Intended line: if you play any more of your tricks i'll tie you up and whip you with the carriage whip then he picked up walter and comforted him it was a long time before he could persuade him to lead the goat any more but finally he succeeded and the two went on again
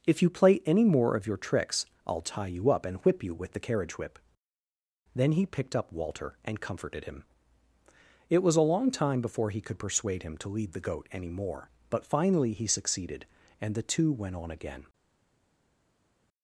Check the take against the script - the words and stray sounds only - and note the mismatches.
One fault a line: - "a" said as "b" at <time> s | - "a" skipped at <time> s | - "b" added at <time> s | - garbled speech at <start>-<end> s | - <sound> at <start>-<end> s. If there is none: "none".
none